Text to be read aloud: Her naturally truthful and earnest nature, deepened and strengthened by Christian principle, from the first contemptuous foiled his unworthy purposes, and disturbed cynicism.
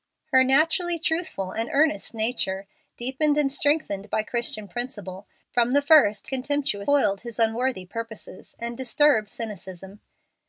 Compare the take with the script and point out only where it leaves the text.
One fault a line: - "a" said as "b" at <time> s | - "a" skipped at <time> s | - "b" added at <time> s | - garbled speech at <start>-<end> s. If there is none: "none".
none